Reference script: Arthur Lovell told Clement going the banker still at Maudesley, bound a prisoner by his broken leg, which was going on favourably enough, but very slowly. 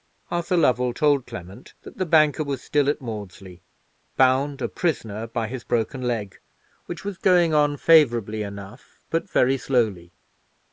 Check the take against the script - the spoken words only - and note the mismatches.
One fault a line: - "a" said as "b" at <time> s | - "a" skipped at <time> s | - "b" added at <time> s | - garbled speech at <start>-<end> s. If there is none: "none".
- "going" said as "that" at 1.8 s
- "was" added at 2.4 s